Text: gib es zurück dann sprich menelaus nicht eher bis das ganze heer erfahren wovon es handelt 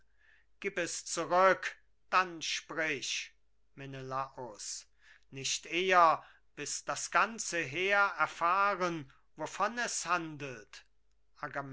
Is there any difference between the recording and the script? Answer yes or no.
no